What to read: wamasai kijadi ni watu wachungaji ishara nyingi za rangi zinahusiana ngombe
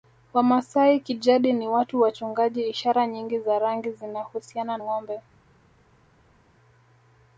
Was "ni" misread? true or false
false